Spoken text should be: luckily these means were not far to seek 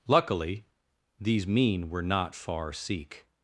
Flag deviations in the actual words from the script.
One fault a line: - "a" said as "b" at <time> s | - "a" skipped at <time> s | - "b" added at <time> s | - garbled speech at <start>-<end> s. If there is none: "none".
- "means" said as "mean" at 1.4 s
- "to" skipped at 2.7 s